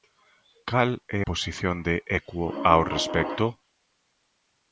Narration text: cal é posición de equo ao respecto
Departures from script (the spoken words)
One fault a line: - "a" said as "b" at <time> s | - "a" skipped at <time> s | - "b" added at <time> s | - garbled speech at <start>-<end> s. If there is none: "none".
none